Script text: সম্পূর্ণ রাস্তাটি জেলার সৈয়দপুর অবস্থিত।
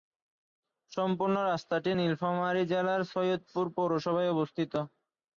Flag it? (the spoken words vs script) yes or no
yes